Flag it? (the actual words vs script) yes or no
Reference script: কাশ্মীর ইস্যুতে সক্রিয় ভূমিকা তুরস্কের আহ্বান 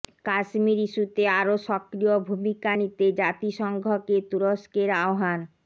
yes